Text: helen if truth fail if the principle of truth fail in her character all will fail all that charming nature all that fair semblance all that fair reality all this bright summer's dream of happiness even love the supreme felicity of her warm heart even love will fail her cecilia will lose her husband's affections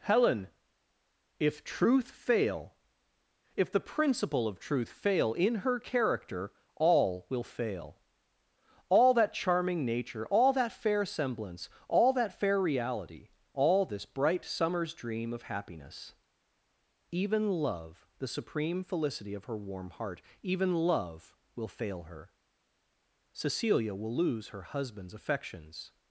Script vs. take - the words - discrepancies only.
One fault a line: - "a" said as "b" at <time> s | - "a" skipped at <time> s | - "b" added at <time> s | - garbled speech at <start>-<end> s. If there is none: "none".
none